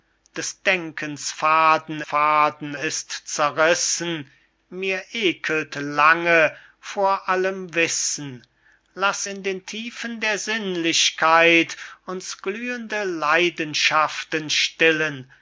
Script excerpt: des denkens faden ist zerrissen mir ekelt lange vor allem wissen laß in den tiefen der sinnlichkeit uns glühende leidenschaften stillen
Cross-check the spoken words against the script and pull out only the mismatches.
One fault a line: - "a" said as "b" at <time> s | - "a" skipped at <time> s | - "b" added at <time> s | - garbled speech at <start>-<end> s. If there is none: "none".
- "faden" added at 2.0 s